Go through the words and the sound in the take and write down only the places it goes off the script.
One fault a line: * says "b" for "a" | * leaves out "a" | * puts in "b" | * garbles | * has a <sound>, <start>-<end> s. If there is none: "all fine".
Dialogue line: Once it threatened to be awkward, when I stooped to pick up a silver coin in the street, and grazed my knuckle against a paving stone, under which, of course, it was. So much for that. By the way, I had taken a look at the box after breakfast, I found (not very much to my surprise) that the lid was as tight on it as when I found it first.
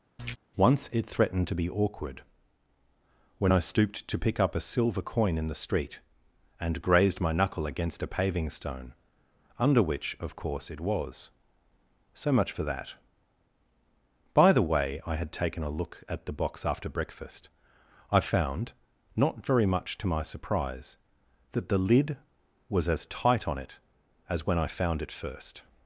* has a throat clearing, 0.2-0.4 s